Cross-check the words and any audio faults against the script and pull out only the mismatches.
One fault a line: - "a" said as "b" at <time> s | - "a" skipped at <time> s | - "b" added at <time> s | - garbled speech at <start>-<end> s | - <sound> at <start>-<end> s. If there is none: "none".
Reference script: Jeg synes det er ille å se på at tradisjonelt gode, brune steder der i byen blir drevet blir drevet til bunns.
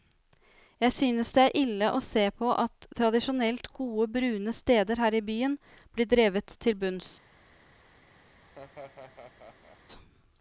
- "der" said as "her" at 5.0 s
- "blir drevet" skipped at 6.6 s
- laugh at 8.4-9.8 s